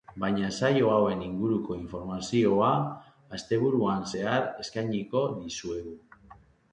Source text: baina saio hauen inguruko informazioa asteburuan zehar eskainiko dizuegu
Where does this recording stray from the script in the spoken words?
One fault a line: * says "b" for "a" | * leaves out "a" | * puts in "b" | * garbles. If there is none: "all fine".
all fine